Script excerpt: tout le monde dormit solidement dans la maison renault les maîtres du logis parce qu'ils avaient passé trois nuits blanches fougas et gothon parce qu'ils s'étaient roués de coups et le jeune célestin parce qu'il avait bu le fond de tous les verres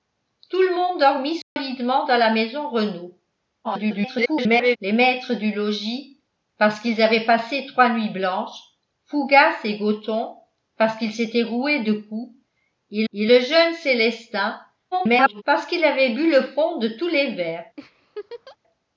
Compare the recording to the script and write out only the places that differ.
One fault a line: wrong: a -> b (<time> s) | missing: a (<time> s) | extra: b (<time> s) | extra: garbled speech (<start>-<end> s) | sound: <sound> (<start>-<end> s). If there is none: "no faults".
sound: dropout (1.4-1.6 s)
extra: garbled speech (3.6-4.8 s)
extra: et (13.1 s)
extra: garbled speech (14.9-15.4 s)
sound: laugh (17.8-18.6 s)